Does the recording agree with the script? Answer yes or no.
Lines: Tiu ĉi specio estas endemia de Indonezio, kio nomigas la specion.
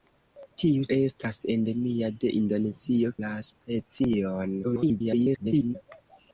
no